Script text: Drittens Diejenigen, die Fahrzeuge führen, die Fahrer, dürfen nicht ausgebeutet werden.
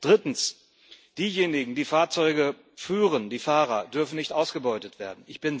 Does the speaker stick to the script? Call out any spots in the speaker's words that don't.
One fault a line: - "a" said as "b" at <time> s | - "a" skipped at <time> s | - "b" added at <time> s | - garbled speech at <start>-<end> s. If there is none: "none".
none